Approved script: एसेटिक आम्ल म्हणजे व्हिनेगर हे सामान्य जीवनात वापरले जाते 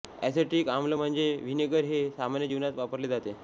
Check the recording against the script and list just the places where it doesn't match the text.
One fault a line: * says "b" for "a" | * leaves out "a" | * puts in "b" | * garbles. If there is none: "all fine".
all fine